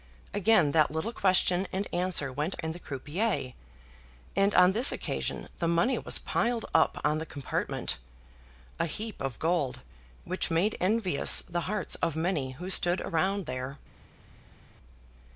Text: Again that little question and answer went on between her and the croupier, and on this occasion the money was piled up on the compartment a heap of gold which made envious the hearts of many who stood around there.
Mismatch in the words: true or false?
true